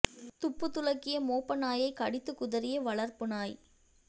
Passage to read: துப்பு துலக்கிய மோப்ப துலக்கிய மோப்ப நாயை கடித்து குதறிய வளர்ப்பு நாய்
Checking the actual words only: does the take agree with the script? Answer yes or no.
no